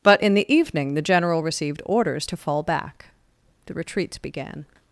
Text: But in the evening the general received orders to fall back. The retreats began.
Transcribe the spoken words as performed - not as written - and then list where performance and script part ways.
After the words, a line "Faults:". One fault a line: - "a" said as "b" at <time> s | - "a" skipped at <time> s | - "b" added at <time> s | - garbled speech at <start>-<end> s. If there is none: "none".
But in the evening the general received orders to fall back. The retreats began.
Faults:
none